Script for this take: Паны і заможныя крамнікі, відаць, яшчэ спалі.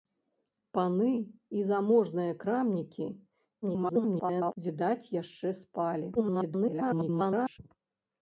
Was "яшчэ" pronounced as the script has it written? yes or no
yes